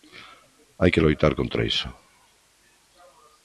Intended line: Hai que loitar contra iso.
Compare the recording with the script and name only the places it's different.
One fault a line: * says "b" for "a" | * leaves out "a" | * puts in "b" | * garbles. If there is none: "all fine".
all fine